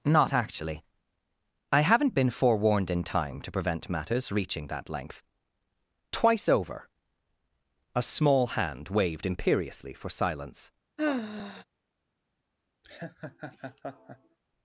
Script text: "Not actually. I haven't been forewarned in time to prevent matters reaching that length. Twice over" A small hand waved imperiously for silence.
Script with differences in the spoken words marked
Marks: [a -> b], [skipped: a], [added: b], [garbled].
"Not actually. I haven't been forewarned in time to prevent matters reaching that length. Twice over" A small hand waved imperiously for silence.